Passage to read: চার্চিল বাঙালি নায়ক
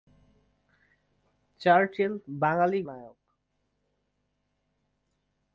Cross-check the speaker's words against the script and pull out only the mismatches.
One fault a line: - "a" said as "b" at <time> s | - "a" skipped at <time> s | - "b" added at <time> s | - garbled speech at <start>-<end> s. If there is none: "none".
none